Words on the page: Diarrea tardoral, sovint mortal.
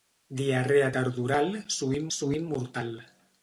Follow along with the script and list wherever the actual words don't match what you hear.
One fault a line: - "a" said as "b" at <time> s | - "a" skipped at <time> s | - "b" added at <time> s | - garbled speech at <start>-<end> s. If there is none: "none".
- "sovint" added at 2.2 s